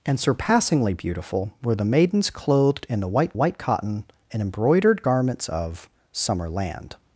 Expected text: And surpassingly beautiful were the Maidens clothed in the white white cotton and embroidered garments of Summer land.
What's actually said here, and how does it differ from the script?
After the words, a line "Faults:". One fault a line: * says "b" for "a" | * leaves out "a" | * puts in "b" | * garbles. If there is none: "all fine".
And surpassingly beautiful were the Maidens clothed in the white white cotton and embroidered garments of Summer land.
Faults:
all fine